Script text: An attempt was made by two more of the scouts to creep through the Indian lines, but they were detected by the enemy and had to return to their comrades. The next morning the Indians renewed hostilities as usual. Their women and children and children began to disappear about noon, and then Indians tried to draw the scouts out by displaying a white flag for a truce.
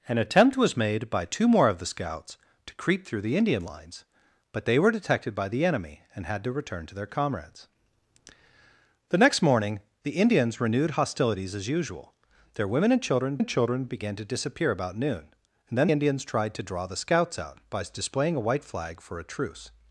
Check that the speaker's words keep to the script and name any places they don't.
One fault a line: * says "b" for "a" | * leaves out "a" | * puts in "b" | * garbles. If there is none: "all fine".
all fine